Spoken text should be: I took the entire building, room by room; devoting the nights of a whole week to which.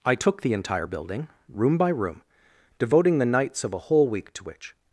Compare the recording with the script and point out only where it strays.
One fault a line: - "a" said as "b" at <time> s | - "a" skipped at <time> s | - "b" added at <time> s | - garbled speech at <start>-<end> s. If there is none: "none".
none